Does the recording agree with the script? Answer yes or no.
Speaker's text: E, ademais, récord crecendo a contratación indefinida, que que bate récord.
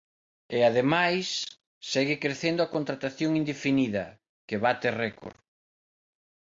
no